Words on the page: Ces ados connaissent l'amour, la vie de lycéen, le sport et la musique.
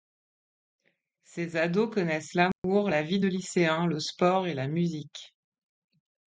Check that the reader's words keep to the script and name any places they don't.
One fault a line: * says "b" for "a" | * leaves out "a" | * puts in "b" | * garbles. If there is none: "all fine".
all fine